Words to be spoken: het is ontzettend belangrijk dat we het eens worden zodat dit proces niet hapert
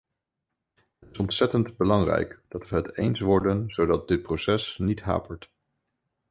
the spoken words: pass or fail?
pass